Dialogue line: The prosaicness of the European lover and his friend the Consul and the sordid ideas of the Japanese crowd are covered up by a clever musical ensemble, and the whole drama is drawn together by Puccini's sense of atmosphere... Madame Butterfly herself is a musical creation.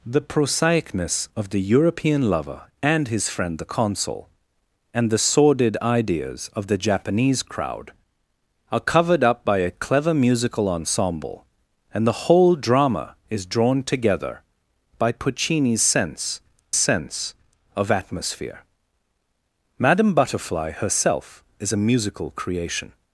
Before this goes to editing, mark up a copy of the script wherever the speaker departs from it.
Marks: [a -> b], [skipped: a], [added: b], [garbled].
The prosaicness of the European lover and his friend the Consul and the sordid ideas of the Japanese crowd are covered up by a clever musical ensemble, and the whole drama is drawn together by Puccini's sense [added: sense] of atmosphere... Madame Butterfly herself is a musical creation.